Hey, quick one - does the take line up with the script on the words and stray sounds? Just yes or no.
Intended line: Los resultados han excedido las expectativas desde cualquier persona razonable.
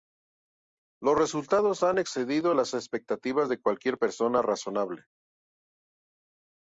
no